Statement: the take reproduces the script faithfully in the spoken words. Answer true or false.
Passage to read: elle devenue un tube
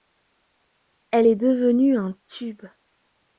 false